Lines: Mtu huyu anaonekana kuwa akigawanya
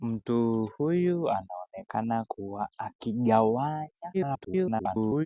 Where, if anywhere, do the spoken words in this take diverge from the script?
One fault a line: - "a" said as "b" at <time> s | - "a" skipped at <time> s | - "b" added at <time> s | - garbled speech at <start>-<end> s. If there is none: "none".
- garbled speech at 4.1-5.3 s